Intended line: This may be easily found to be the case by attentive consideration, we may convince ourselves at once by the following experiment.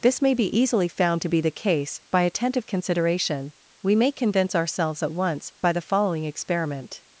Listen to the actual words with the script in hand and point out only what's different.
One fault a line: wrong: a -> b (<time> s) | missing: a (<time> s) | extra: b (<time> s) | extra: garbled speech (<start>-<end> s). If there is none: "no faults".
no faults